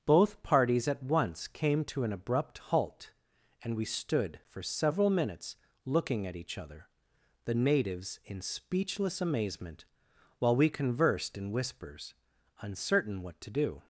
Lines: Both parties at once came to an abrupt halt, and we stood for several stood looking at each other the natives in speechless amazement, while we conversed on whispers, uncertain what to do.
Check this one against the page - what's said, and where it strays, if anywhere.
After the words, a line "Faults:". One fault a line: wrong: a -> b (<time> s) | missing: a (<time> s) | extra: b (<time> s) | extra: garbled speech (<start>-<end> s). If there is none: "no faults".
Both parties at once came to an abrupt halt, and we stood for several minutes looking at each other the natives in speechless amazement, while we conversed in whispers, uncertain what to do.
Faults:
wrong: stood -> minutes (5.1 s)
wrong: on -> in (11.4 s)